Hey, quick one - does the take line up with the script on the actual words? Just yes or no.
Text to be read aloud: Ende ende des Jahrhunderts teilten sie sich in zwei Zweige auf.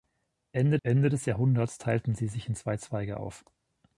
yes